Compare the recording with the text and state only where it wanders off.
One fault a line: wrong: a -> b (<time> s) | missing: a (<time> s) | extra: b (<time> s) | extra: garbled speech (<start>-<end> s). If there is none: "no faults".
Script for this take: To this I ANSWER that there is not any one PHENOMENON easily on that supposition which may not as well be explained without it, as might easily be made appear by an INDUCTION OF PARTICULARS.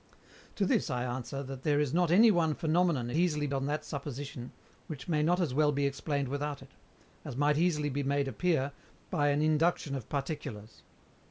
no faults